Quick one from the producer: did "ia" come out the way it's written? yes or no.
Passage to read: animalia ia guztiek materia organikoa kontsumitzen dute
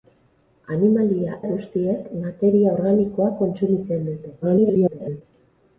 no